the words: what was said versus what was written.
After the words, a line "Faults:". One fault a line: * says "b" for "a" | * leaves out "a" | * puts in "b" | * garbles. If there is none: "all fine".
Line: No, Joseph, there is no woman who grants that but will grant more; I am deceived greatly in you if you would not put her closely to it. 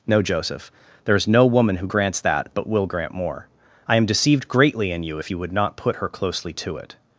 No, Joseph, there is no woman who grants that but will grant more; I am deceived greatly in you if you would not put her closely to it.
Faults:
all fine